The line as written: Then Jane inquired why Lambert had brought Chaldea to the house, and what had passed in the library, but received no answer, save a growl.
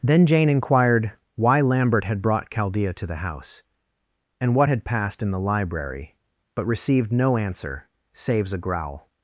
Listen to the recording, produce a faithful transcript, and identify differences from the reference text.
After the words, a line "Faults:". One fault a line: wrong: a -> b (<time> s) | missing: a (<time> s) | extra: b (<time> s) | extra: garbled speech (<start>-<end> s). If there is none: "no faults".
Then Jane inquired why Lambert had brought Chaldea to the house, and what had passed in the library, but received no answer, saves a growl.
Faults:
wrong: save -> saves (8.1 s)